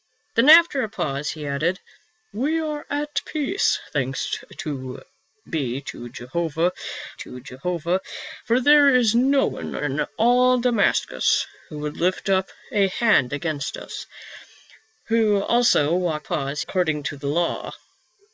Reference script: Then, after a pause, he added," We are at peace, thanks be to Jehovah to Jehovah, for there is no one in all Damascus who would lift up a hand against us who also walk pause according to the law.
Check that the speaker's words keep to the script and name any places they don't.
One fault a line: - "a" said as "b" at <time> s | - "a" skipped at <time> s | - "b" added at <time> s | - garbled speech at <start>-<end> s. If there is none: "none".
none